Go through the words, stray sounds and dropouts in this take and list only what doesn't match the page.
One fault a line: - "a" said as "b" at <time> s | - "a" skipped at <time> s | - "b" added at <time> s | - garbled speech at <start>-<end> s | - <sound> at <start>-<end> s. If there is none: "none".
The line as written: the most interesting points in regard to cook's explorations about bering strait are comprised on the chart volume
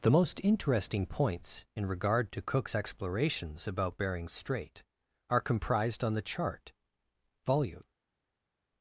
none